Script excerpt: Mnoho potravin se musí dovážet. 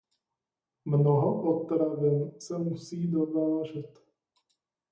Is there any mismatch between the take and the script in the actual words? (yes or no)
no